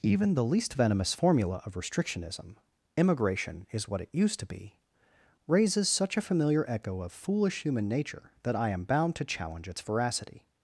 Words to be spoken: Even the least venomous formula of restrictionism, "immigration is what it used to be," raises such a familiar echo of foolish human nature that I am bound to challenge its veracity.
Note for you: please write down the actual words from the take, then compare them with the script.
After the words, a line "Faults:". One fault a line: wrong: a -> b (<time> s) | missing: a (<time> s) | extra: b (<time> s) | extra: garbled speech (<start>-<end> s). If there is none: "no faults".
Even the least venomous formula of restrictionism, "immigration is what it used to be," raises such a familiar echo of foolish human nature that I am bound to challenge its veracity.
Faults:
no faults